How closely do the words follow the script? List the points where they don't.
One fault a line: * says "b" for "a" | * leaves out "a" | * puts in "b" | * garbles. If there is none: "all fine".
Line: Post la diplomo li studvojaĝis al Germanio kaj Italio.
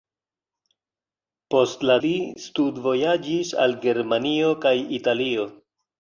* leaves out "diplomo"